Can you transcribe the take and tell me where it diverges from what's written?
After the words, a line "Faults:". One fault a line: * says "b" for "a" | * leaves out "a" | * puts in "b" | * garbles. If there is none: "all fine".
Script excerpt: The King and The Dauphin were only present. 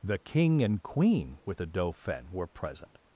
The King and Queen with the Dauphin were present.
Faults:
* puts in "Queen with"
* leaves out "only"